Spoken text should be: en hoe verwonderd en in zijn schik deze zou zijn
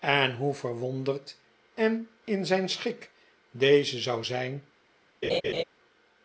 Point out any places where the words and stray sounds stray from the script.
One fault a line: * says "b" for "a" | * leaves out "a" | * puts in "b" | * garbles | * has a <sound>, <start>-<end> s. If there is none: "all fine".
* has a laugh, 5.2-5.6 s